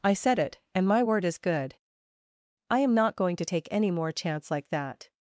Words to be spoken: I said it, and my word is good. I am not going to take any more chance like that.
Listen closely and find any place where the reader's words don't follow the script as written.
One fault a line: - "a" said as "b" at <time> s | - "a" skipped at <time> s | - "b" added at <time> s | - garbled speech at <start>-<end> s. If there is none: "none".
none